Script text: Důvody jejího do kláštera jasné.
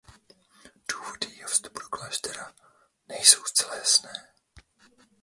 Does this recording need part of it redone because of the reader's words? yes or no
yes